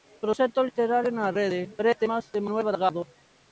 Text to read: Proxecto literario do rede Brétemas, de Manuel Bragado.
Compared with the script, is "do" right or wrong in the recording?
wrong